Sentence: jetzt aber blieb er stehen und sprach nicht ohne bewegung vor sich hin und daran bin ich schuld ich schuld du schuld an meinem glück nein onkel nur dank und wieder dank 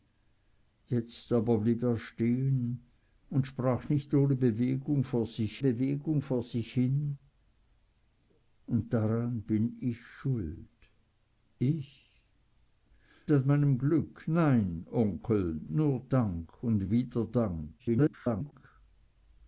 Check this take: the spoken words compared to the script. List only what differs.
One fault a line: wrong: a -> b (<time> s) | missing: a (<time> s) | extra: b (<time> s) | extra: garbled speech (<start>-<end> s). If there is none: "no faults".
extra: bewegung vor sich (5.6 s)
missing: schuld du schuld (12.2 s)
extra: garbled speech (17.8-18.5 s)